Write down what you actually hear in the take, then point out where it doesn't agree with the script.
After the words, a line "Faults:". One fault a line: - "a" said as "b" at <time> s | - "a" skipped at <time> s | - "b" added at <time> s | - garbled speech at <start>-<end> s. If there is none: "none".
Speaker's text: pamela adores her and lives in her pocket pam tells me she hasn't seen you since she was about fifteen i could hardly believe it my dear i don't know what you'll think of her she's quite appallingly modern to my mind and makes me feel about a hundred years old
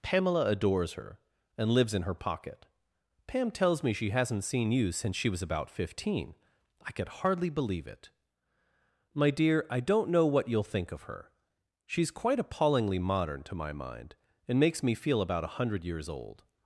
pamela adores her and lives in her pocket pam tells me she hasn't seen you since she was about fifteen i could hardly believe it my dear i don't know what you'll think of her she's quite appallingly modern to my mind and makes me feel about a hundred years old
Faults:
none